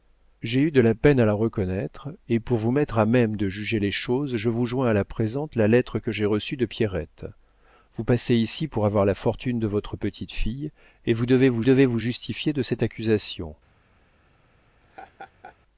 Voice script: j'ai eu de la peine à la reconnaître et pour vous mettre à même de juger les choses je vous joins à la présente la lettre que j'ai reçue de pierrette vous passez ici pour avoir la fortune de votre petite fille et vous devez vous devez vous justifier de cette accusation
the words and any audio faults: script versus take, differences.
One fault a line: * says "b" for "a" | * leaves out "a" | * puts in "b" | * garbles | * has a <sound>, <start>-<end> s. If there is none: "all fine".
* has a laugh, 14.8-15.6 s